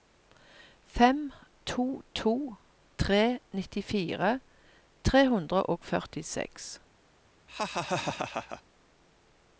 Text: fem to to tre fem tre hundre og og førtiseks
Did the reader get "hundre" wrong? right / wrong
right